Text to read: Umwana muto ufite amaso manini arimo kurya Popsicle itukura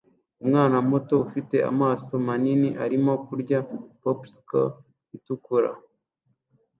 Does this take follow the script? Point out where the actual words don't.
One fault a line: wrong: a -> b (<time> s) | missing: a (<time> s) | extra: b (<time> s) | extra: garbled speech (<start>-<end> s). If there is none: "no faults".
no faults